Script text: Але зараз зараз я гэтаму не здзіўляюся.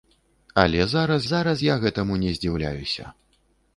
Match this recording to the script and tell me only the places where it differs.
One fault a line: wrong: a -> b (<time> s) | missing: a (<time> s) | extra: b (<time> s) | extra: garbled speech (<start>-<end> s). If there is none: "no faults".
no faults